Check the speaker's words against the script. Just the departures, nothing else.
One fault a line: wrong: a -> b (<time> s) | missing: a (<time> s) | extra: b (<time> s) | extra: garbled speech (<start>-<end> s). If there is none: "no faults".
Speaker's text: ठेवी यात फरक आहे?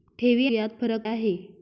no faults